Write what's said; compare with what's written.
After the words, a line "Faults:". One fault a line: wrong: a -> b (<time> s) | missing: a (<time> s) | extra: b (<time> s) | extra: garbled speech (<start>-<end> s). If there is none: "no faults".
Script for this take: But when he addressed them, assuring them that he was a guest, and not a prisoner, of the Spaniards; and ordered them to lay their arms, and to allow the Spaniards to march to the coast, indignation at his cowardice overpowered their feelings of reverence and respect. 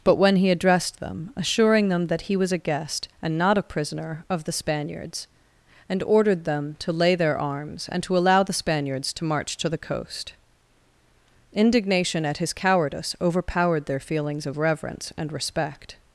But when he addressed them, assuring them that he was a guest, and not a prisoner, of the Spaniards; and ordered them to lay their arms, and to allow the Spaniards to march to the coast, indignation at his cowardice overpowered their feelings of reverence and respect.
Faults:
no faults